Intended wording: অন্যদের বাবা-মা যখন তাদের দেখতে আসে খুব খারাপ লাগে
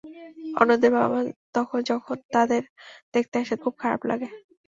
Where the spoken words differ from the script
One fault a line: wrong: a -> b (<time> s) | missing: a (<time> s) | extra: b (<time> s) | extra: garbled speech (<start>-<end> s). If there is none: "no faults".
no faults